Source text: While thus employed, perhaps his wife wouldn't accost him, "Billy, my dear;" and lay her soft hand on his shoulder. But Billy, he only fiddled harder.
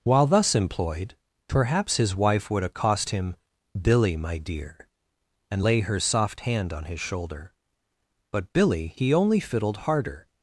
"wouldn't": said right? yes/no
no